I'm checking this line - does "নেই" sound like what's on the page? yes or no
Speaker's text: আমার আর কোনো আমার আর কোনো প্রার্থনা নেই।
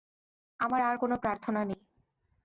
yes